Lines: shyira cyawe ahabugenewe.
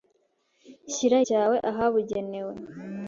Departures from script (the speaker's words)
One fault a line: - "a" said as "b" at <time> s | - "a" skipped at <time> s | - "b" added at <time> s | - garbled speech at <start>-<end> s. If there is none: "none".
none